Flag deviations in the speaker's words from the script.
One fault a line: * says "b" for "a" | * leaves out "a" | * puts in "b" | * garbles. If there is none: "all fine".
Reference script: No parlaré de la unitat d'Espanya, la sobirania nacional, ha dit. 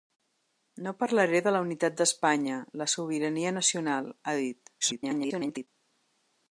* garbles